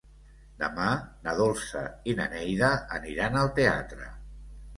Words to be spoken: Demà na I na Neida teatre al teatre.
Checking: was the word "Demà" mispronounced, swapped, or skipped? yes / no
no